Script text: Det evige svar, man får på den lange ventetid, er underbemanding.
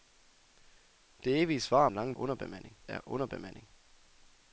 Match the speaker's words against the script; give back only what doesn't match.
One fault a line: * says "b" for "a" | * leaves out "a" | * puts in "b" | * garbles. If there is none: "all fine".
* leaves out "man får på"
* says "underbemanding" for "ventetid"